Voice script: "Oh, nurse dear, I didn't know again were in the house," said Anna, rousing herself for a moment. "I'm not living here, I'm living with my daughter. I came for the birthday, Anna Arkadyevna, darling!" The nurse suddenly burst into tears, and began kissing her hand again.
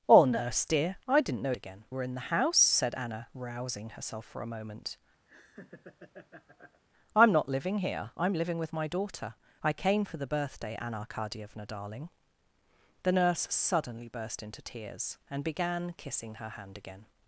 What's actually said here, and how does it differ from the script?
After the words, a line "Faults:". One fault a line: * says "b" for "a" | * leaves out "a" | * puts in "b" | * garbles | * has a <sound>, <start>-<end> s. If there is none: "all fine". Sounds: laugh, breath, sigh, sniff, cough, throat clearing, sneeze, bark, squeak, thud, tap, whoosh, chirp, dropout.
"Oh, nurse dear, I didn't know again were in the house," said Anna, rousing herself for a moment. "I'm not living here, I'm living with my daughter. I came for the birthday, Anna Arkadyevna, darling!" The nurse suddenly burst into tears, and began kissing her hand again.
Faults:
* has a laugh, 5.3-6.8 s